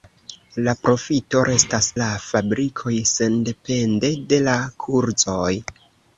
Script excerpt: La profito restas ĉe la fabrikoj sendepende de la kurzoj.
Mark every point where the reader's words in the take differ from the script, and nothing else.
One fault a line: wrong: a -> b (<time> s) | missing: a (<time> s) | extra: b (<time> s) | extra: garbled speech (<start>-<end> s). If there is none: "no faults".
missing: ĉe (1.9 s)